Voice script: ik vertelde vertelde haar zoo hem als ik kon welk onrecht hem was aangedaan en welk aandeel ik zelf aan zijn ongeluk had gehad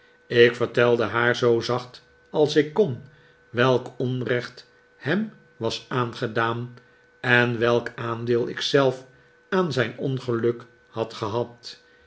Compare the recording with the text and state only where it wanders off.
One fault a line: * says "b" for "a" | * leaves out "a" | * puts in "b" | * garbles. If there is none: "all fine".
* leaves out "vertelde"
* says "zacht" for "hem"